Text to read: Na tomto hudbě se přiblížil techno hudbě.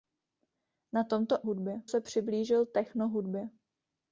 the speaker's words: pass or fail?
pass